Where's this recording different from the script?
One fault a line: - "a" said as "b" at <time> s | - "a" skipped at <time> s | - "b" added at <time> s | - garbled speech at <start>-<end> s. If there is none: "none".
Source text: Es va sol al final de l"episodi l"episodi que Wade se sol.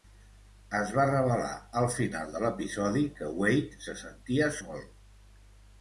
- "sol" said as "revelar" at 1.1 s
- "l"episodi" skipped at 3.0 s
- "sentia" added at 4.1 s